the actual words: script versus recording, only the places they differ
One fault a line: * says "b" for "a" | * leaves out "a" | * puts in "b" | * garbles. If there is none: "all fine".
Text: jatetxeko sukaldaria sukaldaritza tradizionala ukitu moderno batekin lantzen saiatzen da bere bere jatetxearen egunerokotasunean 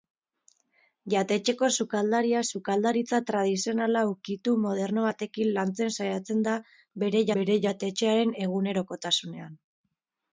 all fine